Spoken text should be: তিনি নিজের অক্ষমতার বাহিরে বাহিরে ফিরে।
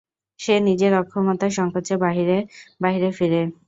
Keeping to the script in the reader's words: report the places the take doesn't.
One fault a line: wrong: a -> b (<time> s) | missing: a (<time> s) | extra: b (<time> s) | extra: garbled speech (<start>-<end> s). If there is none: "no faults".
wrong: তিনি -> সে (0.4 s)
extra: সংকোচে (1.6 s)